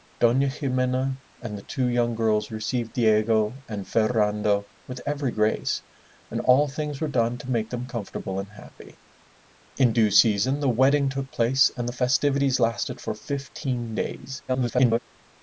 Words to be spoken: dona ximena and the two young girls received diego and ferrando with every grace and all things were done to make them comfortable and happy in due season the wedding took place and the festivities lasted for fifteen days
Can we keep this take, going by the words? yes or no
no